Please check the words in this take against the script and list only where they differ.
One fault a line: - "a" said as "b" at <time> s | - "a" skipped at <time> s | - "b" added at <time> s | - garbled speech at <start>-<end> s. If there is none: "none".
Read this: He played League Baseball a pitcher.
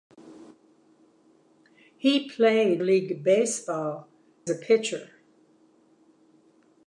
none